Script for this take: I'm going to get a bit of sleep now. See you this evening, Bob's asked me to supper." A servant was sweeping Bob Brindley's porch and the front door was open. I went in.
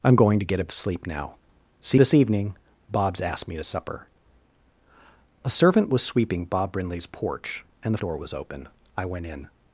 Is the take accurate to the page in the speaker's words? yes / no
no